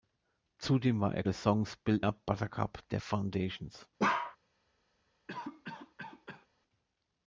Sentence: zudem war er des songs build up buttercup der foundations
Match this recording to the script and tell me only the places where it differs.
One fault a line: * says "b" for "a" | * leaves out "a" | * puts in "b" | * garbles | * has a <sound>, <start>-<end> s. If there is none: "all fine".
* has a bark, 4.0-4.4 s
* has a cough, 5.3-6.5 s